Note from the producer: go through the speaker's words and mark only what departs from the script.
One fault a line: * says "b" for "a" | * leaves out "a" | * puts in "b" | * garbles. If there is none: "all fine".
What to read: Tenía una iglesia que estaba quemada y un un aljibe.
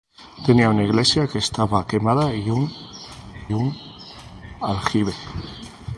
all fine